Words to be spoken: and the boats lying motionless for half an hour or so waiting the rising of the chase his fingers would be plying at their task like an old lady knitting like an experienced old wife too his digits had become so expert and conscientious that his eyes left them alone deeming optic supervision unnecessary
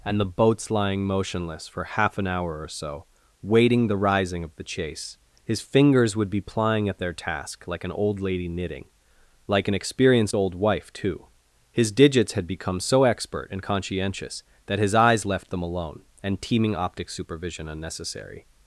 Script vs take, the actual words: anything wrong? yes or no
yes